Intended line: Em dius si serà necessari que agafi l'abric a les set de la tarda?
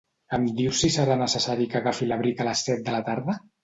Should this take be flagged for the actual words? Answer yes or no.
no